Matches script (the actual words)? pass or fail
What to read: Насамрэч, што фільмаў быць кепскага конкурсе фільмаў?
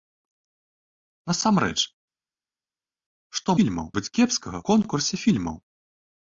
pass